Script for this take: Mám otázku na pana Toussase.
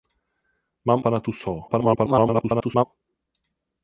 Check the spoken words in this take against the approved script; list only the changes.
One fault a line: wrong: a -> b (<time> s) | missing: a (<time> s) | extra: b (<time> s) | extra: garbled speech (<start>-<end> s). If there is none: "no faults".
missing: otázku na (1.0 s)
extra: garbled speech (1.7-2.9 s)